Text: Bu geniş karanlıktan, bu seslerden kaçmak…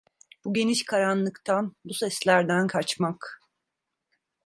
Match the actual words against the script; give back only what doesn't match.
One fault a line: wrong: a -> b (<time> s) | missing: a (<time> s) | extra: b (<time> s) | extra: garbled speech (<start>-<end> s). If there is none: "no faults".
no faults